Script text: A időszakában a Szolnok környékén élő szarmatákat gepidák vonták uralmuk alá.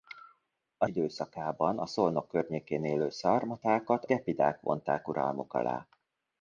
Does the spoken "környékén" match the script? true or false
true